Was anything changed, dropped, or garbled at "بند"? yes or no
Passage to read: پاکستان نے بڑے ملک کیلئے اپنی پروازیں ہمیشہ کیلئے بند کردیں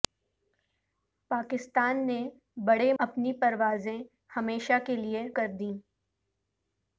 yes